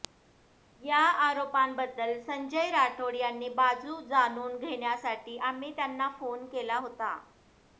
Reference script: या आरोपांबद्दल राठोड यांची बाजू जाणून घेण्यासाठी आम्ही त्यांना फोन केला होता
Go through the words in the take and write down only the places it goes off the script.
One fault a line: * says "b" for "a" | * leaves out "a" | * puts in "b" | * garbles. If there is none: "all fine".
* puts in "संजय"